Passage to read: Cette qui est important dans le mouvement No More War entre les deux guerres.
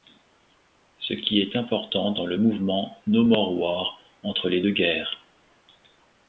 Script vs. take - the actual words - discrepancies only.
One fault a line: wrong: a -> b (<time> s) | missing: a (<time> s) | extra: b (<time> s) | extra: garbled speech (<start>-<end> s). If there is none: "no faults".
wrong: Cette -> Ce (1.0 s)